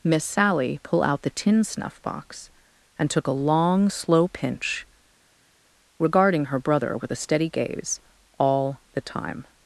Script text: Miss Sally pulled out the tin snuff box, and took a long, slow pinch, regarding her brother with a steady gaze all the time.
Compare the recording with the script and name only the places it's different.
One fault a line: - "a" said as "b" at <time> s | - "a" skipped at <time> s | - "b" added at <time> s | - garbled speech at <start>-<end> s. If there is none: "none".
- "pulled" said as "pull" at 0.8 s